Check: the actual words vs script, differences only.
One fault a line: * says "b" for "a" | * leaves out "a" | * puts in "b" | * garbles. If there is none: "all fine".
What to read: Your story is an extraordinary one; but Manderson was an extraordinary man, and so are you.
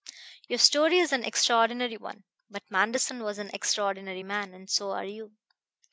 all fine